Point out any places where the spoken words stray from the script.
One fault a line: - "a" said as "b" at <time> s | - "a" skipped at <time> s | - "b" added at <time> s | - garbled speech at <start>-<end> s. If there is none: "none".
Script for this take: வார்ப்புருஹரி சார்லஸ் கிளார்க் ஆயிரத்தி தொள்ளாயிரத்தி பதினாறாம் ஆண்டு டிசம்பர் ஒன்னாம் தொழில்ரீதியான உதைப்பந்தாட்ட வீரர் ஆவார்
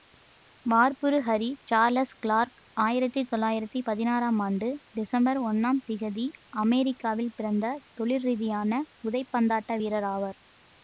- "திகதி அமெரிக்காவில் பிறந்த" added at 5.9 s